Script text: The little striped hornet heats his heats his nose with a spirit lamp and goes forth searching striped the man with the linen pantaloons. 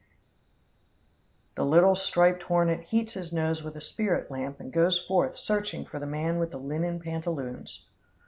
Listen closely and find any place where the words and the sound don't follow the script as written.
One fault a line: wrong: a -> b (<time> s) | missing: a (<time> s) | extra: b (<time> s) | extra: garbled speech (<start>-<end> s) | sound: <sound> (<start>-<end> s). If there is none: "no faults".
missing: heats his (3.3 s)
wrong: striped -> for (5.8 s)